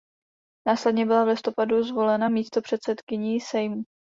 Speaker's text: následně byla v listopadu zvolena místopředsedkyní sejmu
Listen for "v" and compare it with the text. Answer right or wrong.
right